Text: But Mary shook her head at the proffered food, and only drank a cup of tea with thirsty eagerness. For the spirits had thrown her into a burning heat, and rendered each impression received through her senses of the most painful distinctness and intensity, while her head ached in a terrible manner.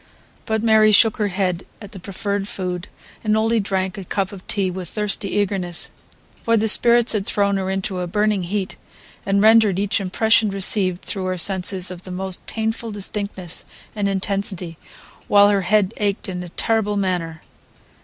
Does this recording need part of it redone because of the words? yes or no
no